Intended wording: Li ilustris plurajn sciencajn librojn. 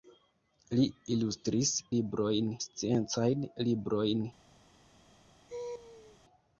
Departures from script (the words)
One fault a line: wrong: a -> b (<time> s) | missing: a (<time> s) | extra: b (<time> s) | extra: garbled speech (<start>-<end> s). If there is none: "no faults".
wrong: plurajn -> librojn (2.0 s)